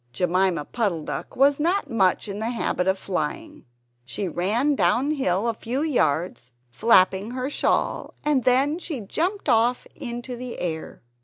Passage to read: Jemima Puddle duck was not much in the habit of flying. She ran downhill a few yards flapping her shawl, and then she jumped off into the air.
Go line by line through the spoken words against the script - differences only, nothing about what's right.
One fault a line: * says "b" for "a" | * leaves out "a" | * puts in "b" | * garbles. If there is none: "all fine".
all fine